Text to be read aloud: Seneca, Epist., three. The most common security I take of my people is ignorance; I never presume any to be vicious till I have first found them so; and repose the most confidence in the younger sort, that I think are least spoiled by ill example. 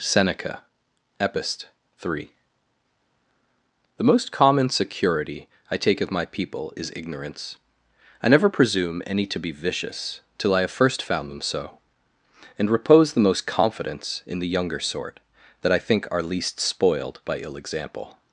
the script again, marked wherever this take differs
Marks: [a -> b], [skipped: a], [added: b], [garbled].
Seneca, Epist., three. The most common security I take of my people is ignorance; I never presume any to be vicious till I have first found them so; and repose the most confidence in the younger sort, that I think are least spoiled by ill example.